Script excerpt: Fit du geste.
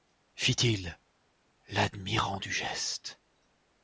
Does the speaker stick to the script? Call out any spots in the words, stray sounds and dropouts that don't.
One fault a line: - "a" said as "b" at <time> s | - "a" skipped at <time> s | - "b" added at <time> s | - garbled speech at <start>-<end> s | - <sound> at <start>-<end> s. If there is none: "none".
- "il l'admirant" added at 0.6 s